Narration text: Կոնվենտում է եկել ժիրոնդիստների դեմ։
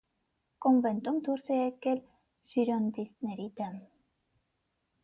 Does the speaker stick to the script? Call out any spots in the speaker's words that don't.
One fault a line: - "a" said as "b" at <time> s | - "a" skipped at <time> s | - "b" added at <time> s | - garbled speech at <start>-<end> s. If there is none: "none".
- "դուրս" added at 1.3 s